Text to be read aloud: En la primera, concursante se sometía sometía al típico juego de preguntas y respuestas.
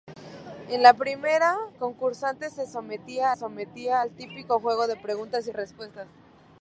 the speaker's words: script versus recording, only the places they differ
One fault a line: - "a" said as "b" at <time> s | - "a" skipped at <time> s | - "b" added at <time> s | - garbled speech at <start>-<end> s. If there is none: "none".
none